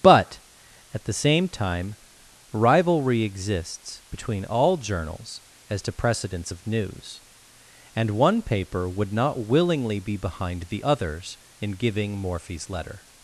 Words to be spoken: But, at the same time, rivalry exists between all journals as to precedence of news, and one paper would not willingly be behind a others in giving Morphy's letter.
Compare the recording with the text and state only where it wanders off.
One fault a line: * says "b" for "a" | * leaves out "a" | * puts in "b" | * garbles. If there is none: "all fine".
* says "the" for "a"